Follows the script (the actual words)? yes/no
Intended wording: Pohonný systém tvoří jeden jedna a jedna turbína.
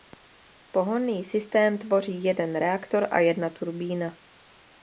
no